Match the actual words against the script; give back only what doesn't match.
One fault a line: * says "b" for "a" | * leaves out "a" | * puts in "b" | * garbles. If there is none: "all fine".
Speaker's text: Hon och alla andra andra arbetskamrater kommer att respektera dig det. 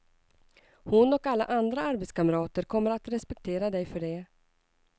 * leaves out "andra"
* puts in "för"